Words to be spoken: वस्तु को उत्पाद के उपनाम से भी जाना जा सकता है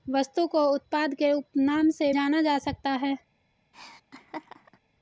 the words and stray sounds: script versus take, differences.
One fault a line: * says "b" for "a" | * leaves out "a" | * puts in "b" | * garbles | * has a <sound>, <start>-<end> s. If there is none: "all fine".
* leaves out "भी"
* has a laugh, 3.7-4.8 s